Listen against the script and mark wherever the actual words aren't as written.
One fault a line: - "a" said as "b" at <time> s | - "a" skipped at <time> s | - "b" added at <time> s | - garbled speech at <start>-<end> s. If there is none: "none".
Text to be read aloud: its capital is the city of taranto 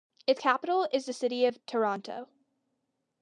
none